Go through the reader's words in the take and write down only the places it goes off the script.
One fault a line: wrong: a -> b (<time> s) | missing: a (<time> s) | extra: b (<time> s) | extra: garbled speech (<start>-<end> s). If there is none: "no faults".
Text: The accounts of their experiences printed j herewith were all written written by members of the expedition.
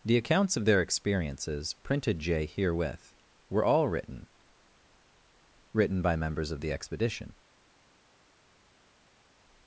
no faults